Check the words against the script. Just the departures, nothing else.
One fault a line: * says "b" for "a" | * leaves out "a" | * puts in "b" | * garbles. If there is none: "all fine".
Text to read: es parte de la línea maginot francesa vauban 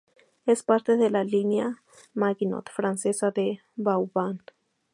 * puts in "de"